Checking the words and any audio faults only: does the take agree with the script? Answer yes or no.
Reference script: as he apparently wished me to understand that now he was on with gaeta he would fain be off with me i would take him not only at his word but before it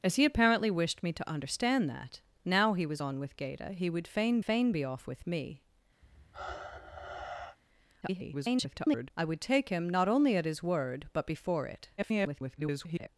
no